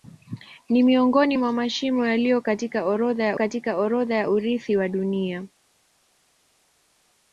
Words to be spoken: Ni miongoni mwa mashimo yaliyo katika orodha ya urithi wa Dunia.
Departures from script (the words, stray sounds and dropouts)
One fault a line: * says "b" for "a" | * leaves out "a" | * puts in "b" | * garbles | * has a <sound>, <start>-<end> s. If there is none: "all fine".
* puts in "katika orodha ya"